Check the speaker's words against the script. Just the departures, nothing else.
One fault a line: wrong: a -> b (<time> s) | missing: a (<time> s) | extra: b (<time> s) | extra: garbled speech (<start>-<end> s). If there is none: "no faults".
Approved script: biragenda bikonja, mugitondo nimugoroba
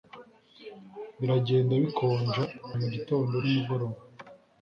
no faults